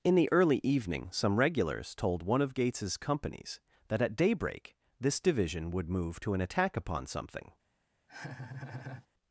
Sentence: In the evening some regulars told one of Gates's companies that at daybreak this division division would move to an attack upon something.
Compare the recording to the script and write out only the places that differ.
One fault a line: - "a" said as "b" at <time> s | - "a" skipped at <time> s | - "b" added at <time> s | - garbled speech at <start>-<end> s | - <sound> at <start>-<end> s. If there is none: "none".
- "early" added at 0.3 s
- "division" skipped at 5.7 s
- laugh at 8.1-9.1 s